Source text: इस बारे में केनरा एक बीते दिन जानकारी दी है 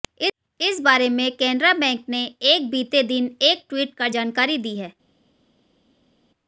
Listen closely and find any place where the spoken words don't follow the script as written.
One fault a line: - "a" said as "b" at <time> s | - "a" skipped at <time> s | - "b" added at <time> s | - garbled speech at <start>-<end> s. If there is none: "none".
- "बैंक ने" added at 1.7 s
- "एक ट्वीट कर" added at 3.4 s